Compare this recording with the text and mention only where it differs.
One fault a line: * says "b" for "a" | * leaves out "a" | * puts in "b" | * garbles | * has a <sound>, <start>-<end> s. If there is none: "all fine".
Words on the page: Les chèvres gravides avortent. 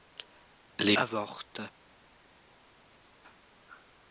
* leaves out "chèvres gravides"